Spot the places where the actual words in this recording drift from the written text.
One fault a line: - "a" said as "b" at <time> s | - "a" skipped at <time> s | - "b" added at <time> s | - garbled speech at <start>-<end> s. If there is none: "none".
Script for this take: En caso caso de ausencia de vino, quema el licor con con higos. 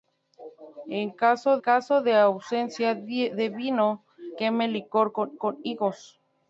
none